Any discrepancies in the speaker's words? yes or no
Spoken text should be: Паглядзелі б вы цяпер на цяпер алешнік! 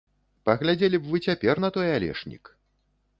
yes